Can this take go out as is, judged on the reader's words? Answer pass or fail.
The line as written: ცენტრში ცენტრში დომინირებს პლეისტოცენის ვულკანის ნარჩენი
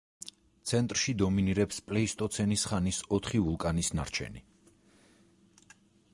fail